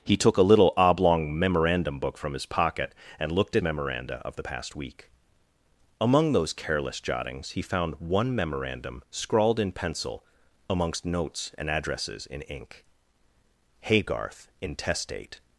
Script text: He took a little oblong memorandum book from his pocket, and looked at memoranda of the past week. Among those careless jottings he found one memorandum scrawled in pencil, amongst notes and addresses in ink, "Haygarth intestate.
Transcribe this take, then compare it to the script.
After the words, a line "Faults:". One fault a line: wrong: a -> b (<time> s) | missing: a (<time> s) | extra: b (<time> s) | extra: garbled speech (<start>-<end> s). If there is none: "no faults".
He took a little oblong memorandum book from his pocket, and looked at memoranda of the past week. Among those careless jottings he found one memorandum scrawled in pencil, amongst notes and addresses in ink, "Haygarth intestate.
Faults:
no faults